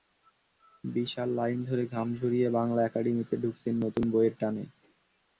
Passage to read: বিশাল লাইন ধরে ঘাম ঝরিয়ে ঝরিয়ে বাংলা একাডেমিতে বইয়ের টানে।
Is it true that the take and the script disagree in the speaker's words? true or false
true